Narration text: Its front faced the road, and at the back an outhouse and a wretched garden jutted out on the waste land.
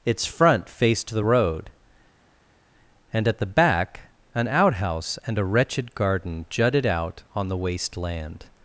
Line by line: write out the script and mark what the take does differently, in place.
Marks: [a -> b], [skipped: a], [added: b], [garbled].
Its front faced the road, and at the back an outhouse and a wretched garden jutted out on the waste land.